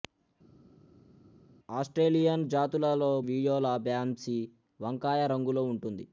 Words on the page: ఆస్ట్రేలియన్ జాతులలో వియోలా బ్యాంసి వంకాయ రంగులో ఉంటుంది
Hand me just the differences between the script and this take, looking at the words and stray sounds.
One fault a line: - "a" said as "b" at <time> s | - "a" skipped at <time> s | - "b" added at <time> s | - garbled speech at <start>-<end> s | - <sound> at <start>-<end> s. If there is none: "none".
none